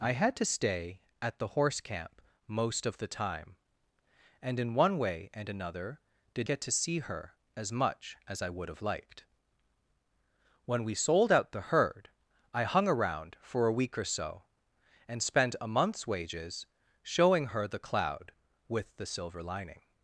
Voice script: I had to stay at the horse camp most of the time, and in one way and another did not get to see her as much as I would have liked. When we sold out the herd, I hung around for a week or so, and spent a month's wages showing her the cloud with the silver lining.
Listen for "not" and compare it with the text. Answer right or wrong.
wrong